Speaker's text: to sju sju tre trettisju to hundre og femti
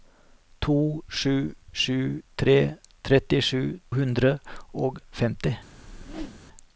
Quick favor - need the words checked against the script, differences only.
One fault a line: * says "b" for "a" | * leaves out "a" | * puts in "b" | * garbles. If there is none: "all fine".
* leaves out "to"